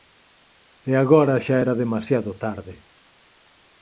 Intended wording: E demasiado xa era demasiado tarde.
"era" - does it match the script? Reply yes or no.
yes